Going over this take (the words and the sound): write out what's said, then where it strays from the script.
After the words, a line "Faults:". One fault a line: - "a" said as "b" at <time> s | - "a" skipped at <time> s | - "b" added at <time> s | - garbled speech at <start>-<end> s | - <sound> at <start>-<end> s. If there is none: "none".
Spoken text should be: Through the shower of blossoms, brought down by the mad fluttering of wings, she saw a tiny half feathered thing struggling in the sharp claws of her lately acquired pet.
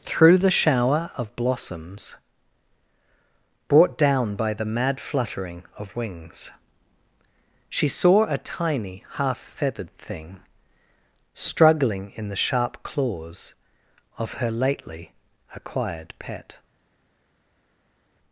Through the shower of blossoms, brought down by the mad fluttering of wings, she saw a tiny half feathered thing struggling in the sharp claws of her lately acquired pet.
Faults:
none